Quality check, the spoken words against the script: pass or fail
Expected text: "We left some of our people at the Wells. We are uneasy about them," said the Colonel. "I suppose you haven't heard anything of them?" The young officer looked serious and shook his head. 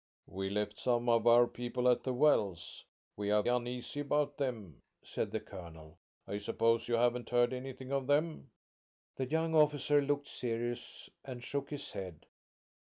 pass